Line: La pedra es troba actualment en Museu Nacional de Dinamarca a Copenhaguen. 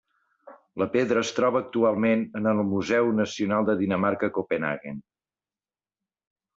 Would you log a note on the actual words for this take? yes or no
yes